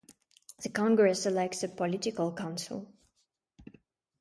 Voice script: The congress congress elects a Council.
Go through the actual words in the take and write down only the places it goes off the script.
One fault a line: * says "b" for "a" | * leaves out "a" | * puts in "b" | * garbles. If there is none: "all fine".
* leaves out "congress"
* puts in "Political"